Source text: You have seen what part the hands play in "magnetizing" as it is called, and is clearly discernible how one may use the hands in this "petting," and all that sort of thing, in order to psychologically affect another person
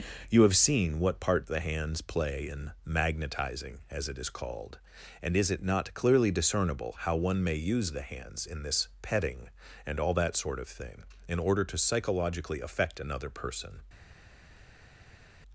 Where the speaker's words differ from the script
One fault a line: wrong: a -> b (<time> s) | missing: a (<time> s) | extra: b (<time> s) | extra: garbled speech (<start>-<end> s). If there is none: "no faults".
extra: it not (5.5 s)